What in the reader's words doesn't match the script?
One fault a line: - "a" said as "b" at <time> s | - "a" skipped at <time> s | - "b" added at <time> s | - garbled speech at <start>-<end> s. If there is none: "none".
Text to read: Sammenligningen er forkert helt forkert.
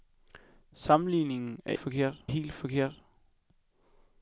none